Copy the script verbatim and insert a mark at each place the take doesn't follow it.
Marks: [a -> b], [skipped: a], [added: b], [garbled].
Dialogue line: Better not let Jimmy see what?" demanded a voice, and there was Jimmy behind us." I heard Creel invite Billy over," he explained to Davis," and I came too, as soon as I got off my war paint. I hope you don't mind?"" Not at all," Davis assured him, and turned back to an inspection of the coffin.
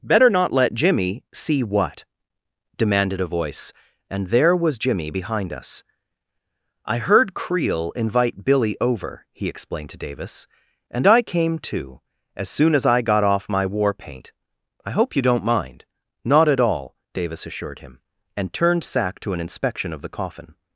Better not let Jimmy see what?" demanded a voice, and there was Jimmy behind us." I heard Creel invite Billy over," he explained to Davis," and I came too, as soon as I got off my war paint. I hope you don't mind?"" Not at all," Davis assured him, and turned [back -> sack] to an inspection of the coffin.